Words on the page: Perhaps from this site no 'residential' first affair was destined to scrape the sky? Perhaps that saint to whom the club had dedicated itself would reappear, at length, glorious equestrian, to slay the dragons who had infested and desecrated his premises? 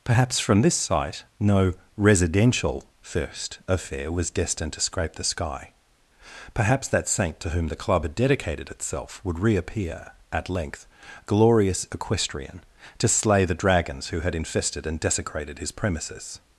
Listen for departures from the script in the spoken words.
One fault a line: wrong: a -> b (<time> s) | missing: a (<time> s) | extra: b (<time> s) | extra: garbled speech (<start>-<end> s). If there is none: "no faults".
no faults